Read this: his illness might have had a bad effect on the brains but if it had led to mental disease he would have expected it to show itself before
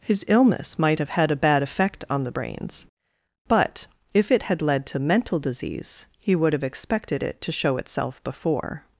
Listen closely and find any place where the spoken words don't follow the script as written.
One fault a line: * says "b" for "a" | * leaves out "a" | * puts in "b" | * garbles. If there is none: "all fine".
all fine